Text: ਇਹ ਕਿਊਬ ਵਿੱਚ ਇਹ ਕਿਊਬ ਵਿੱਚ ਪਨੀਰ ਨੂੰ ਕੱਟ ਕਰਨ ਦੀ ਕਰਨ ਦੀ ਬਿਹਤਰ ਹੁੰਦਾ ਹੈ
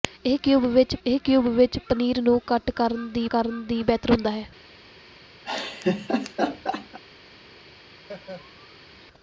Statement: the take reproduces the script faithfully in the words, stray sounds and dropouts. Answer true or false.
false